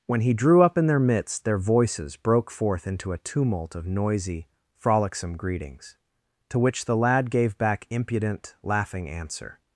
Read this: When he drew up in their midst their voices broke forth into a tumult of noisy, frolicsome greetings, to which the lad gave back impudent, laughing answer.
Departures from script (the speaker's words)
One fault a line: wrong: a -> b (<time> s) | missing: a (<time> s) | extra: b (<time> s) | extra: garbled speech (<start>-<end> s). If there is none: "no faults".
no faults